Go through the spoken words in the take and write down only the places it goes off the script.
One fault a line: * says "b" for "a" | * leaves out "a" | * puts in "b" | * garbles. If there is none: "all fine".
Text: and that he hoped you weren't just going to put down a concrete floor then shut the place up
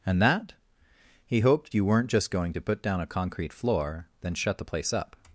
all fine